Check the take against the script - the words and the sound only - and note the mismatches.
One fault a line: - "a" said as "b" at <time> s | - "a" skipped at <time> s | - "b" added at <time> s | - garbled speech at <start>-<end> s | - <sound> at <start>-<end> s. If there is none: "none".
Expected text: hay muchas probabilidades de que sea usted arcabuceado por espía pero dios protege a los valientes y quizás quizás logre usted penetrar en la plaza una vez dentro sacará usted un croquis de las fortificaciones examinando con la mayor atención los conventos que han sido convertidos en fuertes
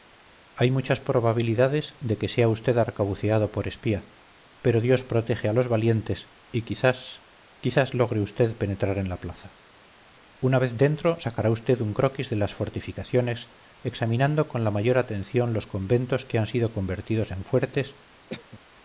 - cough at 18.3-18.6 s